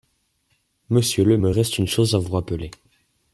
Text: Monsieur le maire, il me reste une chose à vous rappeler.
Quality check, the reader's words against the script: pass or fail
fail